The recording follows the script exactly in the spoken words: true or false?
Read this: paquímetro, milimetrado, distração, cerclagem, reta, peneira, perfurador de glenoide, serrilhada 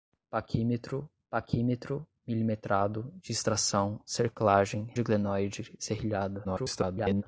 false